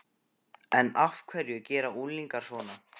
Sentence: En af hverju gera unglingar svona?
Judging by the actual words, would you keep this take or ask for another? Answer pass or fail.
pass